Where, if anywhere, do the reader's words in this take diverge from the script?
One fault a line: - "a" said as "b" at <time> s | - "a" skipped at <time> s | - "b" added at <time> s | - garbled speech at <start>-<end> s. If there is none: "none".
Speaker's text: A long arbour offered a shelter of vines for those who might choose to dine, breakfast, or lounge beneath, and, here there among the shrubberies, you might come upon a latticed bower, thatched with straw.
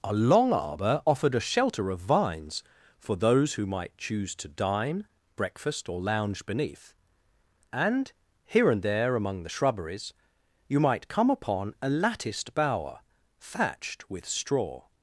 - "and" added at 8.7 s